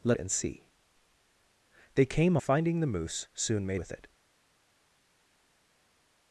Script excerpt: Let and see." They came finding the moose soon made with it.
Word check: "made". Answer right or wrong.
right